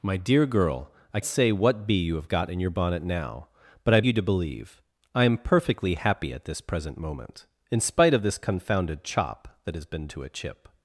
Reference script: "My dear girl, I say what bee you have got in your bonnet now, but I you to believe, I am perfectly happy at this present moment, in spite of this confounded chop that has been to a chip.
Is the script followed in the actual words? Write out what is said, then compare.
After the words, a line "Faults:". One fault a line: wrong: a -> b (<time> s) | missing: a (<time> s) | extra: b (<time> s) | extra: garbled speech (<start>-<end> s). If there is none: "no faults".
"My dear girl, I say what bee you have got in your bonnet now, but I you to believe, I am perfectly happy at this present moment, in spite of this confounded chop that has been to a chip.
Faults:
no faults